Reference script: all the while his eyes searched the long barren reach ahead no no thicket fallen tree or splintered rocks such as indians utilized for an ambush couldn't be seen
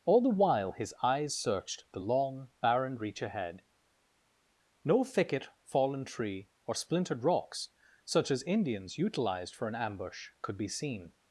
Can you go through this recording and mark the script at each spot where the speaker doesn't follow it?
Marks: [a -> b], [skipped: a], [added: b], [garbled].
all the while his eyes searched the long barren reach ahead no [skipped: no] thicket fallen tree or splintered rocks such as indians utilized for an ambush [couldn't -> could] be seen